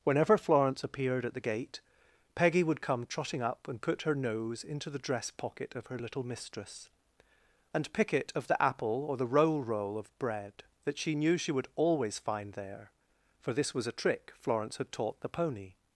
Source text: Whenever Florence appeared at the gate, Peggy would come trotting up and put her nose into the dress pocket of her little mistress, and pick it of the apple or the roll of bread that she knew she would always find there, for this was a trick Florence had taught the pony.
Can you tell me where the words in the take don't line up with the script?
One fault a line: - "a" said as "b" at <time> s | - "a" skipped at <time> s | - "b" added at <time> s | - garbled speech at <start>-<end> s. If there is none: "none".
- "roll" added at 9.6 s